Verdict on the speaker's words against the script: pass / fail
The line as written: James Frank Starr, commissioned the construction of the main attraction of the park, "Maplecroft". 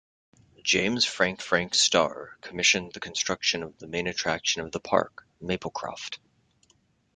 fail